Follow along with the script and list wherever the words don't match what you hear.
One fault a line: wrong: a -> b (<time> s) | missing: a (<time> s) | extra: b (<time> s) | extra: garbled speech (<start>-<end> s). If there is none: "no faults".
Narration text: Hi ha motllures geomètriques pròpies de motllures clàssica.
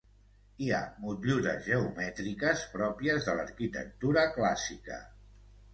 wrong: motllures -> l'arquitectura (3.4 s)